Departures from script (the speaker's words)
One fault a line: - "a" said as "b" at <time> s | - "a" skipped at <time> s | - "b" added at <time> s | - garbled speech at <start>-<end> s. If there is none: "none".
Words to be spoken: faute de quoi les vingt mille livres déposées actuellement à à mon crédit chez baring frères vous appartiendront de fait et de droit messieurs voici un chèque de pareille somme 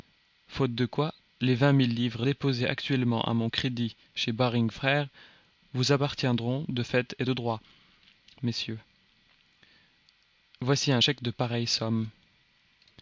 - "à" skipped at 3.3 s